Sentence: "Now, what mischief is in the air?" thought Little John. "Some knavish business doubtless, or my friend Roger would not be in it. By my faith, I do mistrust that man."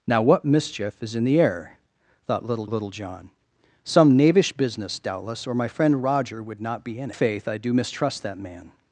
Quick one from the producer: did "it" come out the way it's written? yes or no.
no